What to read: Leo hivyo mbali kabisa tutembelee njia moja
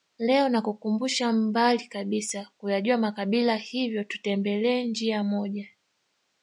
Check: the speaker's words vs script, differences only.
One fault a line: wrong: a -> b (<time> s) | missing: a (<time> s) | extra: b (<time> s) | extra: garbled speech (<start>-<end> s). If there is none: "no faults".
wrong: hivyo -> nakukumbusha (0.5 s)
extra: kuyajua makabila hivyo (2.6 s)